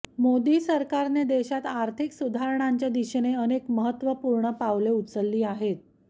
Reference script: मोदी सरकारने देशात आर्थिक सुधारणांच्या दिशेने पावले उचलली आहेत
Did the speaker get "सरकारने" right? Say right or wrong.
right